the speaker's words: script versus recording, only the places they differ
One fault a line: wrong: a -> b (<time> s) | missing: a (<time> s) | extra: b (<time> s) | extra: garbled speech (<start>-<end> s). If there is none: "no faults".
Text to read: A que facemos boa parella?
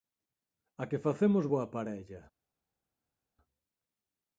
no faults